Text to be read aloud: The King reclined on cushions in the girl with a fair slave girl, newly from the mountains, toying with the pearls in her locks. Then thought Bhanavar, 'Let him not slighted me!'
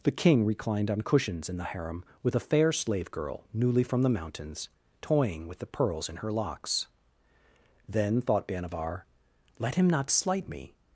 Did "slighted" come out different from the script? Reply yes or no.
yes